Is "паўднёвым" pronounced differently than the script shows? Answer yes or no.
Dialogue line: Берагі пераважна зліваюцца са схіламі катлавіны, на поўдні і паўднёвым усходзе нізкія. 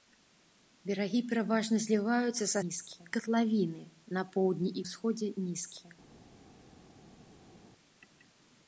yes